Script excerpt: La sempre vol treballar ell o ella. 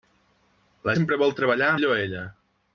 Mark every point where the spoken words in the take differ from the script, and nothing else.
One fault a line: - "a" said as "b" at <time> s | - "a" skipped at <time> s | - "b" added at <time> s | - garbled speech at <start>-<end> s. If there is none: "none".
none